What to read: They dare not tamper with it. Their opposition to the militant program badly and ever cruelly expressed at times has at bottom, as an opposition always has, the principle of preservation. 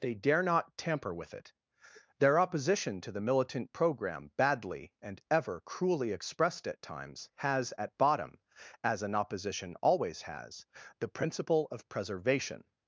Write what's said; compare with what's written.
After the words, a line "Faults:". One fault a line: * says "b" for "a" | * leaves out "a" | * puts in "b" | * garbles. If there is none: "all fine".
They dare not tamper with it. Their opposition to the militant program badly and ever cruelly expressed at times has at bottom, as an opposition always has, the principle of preservation.
Faults:
all fine